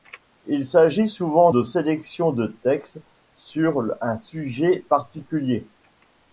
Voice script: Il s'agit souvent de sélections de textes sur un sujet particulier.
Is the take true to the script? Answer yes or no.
yes